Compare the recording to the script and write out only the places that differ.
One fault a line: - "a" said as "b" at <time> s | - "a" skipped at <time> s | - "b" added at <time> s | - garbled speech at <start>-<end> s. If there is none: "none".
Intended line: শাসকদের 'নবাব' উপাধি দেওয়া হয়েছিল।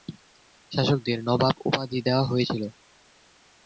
none